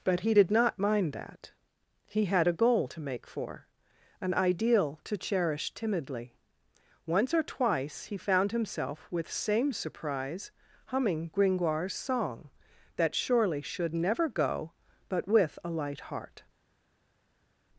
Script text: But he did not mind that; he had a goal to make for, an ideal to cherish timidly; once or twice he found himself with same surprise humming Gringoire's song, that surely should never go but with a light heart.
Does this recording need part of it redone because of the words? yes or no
no